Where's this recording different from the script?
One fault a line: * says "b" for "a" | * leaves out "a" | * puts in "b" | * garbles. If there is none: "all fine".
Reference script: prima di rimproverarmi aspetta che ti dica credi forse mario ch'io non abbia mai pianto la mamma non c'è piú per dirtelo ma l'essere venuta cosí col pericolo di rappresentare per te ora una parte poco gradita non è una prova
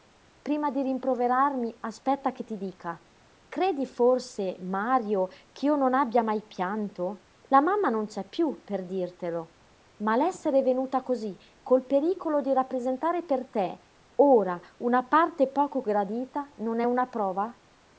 all fine